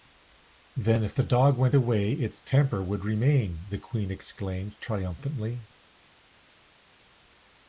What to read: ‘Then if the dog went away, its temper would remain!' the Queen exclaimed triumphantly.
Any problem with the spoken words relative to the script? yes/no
no